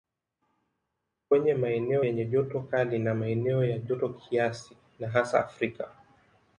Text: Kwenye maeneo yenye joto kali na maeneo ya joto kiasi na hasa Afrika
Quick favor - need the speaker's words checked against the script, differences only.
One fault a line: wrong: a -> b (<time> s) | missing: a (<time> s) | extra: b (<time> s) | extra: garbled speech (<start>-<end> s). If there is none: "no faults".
no faults